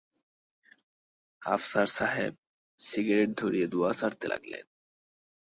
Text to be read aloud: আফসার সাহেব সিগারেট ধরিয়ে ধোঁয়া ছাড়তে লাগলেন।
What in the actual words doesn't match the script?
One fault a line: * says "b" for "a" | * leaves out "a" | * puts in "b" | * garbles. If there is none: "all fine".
all fine